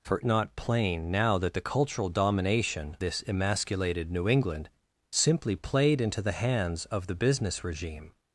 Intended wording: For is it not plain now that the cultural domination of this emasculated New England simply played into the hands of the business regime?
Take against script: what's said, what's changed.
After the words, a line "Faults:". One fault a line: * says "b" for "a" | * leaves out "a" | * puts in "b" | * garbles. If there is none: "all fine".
For not plain now that the cultural domination this emasculated New England simply played into the hands of the business regime?
Faults:
* leaves out "is it"
* leaves out "of"